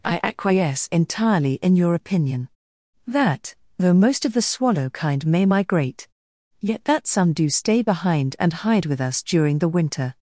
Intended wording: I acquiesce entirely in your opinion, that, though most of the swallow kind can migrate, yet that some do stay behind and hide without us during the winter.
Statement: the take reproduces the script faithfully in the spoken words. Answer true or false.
false